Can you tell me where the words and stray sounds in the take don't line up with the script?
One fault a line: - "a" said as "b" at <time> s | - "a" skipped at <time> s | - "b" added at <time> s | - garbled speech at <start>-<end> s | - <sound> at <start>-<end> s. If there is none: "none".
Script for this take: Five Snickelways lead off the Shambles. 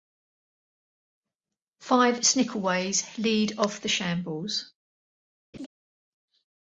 - laugh at 5.5-5.7 s